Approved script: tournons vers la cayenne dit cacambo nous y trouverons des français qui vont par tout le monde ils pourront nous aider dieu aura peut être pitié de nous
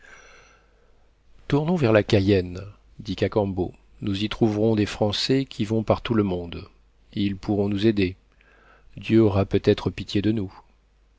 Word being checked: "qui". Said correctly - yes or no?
yes